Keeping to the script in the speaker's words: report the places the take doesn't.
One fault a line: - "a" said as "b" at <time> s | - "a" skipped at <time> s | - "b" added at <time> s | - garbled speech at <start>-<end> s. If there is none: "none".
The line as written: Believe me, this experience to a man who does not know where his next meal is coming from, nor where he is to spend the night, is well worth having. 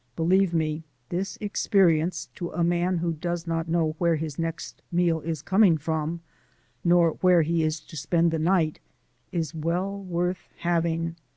none